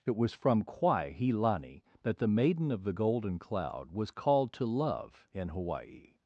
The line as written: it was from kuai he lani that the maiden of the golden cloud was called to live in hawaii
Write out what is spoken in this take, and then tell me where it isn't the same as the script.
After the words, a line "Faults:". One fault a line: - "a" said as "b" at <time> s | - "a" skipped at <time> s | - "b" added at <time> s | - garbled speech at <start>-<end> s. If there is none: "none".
it was from kuai he lani that the maiden of the golden cloud was called to love in hawaii
Faults:
- "live" said as "love" at 4.7 s